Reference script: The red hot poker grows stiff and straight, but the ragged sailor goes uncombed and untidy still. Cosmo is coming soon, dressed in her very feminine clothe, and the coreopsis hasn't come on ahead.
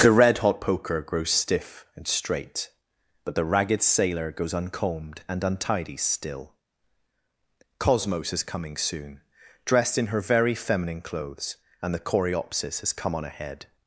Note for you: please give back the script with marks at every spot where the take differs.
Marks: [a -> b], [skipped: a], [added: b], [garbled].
The red hot poker grows stiff and straight, but the ragged sailor goes uncombed and untidy still. [Cosmo -> Cosmos] is coming soon, dressed in her very feminine [clothe, -> clothes] and the coreopsis [hasn't -> has] come on ahead.